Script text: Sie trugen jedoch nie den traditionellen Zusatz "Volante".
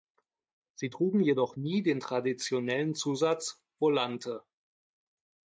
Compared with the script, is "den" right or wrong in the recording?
right